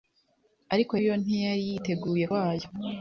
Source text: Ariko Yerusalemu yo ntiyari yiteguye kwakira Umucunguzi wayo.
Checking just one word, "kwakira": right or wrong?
wrong